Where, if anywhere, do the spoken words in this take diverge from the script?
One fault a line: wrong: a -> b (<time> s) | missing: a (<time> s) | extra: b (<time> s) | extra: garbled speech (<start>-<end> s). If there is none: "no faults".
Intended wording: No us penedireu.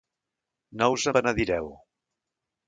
no faults